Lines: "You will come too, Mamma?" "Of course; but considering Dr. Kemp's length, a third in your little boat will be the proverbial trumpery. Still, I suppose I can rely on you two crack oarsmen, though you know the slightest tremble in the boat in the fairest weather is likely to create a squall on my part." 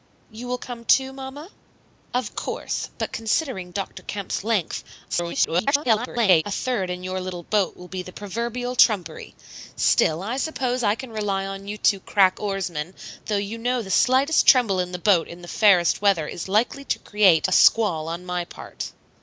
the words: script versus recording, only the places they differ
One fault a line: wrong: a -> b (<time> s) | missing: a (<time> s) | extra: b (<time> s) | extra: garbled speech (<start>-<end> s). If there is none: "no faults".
extra: garbled speech (5.1-6.4 s)